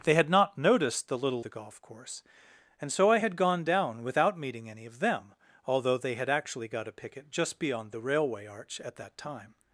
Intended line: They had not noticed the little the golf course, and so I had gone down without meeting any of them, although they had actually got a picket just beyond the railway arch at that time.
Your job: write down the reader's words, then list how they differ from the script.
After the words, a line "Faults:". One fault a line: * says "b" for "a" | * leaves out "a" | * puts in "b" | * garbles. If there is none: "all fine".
They had not noticed the little the golf course, and so I had gone down without meeting any of them, although they had actually got a picket just beyond the railway arch at that time.
Faults:
all fine